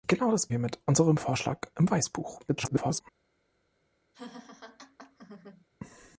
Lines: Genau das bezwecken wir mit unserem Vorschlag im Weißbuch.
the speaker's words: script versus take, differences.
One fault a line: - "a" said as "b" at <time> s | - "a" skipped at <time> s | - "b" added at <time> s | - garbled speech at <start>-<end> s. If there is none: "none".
- "bezwecken" skipped at 0.5 s
- garbled speech at 2.5-3.0 s